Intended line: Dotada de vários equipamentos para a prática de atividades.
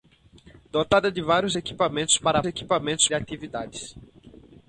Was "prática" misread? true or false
true